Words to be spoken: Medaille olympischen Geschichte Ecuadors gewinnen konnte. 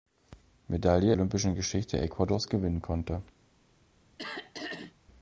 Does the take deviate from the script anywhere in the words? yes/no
no